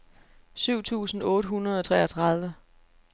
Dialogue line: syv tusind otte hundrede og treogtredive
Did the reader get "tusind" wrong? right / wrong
right